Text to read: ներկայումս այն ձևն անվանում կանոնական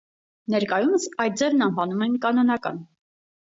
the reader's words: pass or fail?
fail